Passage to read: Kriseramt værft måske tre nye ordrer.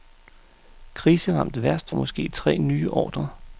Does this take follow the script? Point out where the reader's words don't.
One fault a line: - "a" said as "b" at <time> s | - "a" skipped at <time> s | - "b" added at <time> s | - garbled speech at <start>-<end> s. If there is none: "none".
none